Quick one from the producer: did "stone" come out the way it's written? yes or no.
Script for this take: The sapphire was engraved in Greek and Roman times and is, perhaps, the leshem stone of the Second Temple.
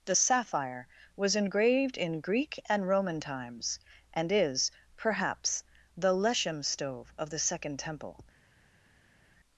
no